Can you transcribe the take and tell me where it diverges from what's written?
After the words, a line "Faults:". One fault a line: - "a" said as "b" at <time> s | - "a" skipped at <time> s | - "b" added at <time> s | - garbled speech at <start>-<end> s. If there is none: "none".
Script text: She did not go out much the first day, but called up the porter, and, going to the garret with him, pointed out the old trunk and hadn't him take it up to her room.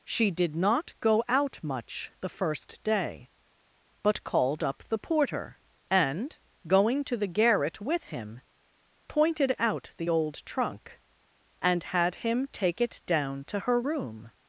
She did not go out much the first day, but called up the porter, and, going to the garret with him, pointed out the old trunk and had him take it down to her room.
Faults:
- "hadn't" said as "had" at 11.8 s
- "up" said as "down" at 13.1 s